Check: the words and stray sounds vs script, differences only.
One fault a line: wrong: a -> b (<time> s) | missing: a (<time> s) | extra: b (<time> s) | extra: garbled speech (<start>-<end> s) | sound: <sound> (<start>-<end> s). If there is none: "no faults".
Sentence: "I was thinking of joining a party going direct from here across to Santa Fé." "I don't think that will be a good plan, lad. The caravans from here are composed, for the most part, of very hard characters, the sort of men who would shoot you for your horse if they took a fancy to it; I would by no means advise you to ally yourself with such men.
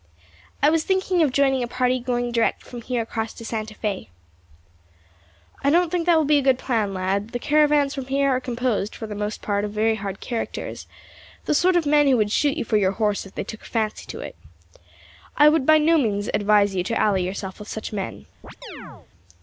sound: chirp (18.4-19.1 s)